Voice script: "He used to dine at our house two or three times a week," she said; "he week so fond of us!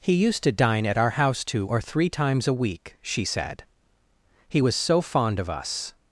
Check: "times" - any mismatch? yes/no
no